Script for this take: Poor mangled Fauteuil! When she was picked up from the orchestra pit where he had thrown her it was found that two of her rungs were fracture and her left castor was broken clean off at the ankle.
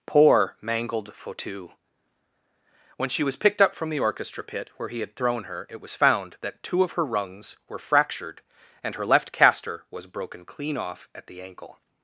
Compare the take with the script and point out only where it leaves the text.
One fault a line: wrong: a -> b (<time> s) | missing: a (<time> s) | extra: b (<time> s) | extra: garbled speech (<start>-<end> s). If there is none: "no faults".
wrong: fracture -> fractured (7.8 s)